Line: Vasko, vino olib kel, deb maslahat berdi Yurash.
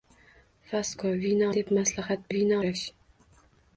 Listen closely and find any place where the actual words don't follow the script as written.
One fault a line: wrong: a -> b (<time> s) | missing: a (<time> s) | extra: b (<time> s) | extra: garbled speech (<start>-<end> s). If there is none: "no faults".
missing: olib kel (1.5 s)
wrong: berdi -> vino (2.3 s)